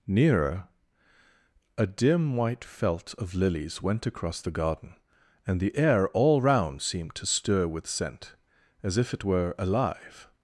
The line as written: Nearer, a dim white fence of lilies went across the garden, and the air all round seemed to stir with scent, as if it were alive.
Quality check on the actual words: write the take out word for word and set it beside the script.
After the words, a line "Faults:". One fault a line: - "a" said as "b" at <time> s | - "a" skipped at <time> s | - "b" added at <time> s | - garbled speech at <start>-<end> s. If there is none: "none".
Nearer, a dim white felt of lilies went across the garden, and the air all round seemed to stir with scent, as if it were alive.
Faults:
- "fence" said as "felt" at 2.6 s